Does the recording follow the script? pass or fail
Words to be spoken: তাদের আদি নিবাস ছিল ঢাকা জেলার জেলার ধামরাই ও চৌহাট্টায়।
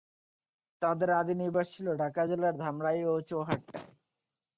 fail